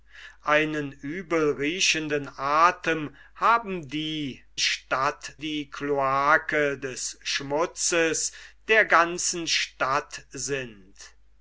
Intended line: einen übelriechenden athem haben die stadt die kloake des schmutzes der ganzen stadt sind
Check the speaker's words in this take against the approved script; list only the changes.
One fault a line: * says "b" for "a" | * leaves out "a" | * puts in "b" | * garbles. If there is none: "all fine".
all fine